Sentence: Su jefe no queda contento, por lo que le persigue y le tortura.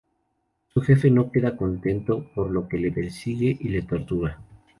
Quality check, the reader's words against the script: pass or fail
pass